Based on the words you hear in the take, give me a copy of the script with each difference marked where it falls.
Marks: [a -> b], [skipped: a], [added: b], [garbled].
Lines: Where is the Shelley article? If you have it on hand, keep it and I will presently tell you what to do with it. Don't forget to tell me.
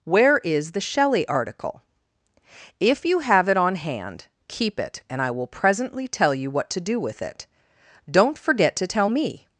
Where is the Shelley article? If you have it on hand, keep it and I will presently tell you what to do with it. Don't forget to tell me.